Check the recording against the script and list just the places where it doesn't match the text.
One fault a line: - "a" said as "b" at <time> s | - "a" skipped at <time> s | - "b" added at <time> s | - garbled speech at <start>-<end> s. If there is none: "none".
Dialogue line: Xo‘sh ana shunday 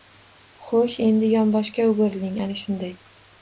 - "endi yonboshga o‘giriling" added at 1.1 s